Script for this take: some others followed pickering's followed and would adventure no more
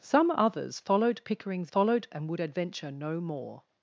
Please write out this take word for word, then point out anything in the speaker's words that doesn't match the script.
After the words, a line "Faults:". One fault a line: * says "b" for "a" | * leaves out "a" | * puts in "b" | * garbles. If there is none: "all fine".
some others followed pickering's followed and would adventure no more
Faults:
all fine